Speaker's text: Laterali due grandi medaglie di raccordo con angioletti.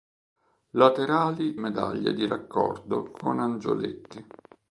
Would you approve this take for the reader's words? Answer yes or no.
no